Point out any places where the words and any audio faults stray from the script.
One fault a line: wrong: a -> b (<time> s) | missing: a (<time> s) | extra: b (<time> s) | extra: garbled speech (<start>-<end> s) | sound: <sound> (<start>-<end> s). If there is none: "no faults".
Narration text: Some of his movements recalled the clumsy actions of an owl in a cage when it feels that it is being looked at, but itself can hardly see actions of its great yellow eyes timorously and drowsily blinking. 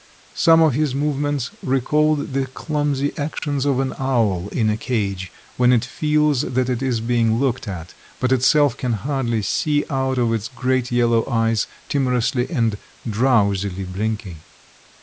sound: dropout (3.4-3.4 s)
wrong: actions -> out (9.9 s)